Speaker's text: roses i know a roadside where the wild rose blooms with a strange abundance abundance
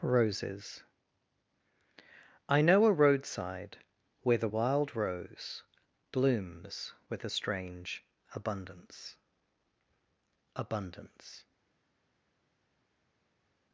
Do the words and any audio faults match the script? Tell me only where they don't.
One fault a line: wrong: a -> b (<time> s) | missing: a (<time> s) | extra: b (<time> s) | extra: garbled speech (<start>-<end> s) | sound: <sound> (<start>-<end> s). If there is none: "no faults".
no faults